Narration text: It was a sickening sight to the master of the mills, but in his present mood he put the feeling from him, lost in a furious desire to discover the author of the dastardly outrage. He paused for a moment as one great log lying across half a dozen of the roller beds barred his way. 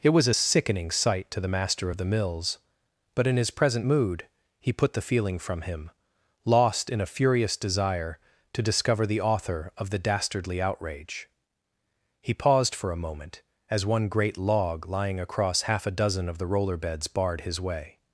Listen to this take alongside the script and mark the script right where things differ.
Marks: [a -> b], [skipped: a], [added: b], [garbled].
It was a sickening sight to the master of the mills, but in his present mood he put the feeling from him, lost in a furious desire to discover the author of the dastardly outrage. He paused for a moment as one great log lying across half a dozen of the roller beds barred his way.